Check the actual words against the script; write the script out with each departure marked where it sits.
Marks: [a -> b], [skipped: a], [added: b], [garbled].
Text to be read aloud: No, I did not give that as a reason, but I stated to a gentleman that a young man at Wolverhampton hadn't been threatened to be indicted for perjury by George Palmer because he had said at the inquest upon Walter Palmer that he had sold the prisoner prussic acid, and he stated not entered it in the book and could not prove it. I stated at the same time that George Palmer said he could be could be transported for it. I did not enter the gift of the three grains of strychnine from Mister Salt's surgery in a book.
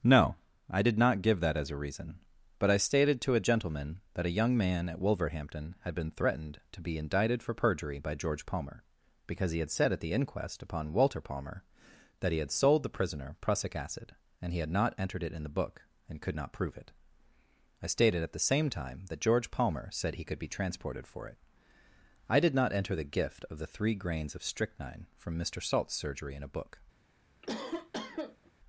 No, I did not give that as a reason, but I stated to a gentleman that a young man at Wolverhampton [hadn't -> had] been threatened to be indicted for perjury by George Palmer because he had said at the inquest upon Walter Palmer that he had sold the prisoner prussic acid, and he [stated -> had] not entered it in the book and could not prove it. I stated at the same time that George Palmer said he could be [skipped: could be] transported for it. I did not enter the gift of the three grains of strychnine from Mister Salt's surgery in a book.